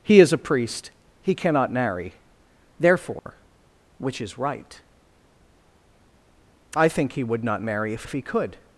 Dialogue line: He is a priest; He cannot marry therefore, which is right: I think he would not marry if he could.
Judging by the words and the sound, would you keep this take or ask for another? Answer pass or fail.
fail